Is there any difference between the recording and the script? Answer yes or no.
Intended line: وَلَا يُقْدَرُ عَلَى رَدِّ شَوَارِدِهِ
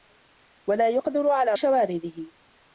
yes